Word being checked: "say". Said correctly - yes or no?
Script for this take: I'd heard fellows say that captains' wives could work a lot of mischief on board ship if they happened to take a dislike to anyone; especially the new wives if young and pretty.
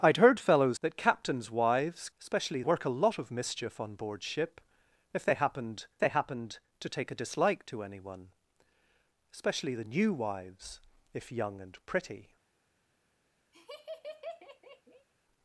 no